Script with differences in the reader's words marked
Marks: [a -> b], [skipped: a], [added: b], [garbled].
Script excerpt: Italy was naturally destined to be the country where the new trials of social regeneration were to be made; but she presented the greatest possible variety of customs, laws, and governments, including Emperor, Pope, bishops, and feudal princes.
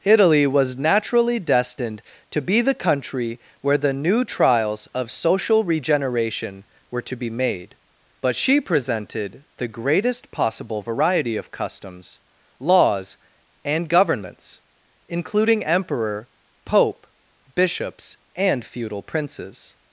Italy was naturally destined to be the country where the new trials of social regeneration were to be made; but she presented the greatest possible variety of customs, laws, and governments, including Emperor, Pope, bishops, and feudal princes.